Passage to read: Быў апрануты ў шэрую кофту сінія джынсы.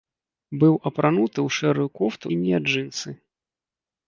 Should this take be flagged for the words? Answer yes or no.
no